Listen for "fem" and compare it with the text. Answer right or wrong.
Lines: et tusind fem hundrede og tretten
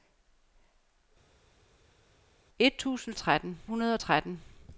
wrong